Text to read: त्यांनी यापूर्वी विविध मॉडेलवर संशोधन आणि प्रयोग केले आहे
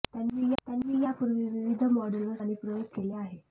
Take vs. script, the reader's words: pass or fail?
fail